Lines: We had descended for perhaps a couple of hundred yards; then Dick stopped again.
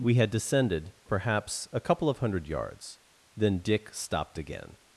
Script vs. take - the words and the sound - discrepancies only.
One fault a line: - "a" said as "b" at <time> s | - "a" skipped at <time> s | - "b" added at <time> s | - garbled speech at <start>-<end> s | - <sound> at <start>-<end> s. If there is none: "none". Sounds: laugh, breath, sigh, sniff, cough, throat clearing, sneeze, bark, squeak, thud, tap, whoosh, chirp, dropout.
- "for" skipped at 0.9 s